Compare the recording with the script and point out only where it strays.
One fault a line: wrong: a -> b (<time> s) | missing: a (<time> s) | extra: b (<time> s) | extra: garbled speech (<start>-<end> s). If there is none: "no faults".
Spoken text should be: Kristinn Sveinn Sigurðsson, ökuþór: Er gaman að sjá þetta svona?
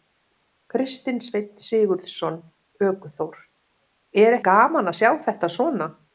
no faults